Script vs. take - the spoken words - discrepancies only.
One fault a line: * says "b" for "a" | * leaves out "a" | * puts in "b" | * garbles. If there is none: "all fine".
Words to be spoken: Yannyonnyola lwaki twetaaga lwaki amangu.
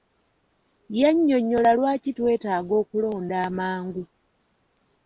* says "okulonda" for "lwaki"